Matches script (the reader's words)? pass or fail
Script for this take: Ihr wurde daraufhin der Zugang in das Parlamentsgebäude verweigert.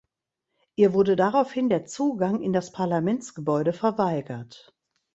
pass